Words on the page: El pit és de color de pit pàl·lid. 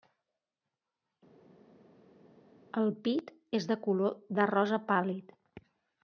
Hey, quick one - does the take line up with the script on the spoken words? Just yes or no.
no